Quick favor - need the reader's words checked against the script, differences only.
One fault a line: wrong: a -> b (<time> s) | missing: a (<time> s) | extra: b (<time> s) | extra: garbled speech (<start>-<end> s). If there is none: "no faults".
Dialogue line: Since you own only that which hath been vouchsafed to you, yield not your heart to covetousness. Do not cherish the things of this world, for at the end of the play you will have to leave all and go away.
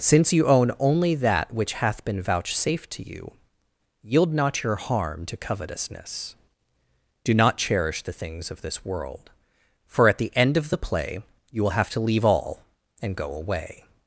wrong: heart -> harm (4.8 s)